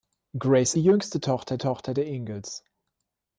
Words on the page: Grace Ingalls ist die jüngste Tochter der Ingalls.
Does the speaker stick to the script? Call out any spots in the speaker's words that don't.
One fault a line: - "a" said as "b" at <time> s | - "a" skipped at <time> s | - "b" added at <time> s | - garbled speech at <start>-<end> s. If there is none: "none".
- "Ingalls ist" skipped at 0.7 s
- "Tochter" added at 1.6 s